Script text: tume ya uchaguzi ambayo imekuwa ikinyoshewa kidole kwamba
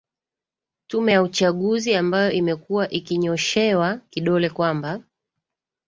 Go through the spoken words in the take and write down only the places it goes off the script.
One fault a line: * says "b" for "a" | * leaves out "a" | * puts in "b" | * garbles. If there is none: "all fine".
all fine